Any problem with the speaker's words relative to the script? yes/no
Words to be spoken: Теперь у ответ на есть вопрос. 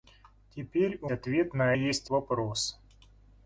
no